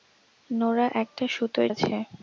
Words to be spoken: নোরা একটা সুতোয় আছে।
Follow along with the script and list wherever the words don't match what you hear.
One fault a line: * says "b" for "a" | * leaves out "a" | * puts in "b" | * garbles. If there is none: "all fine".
all fine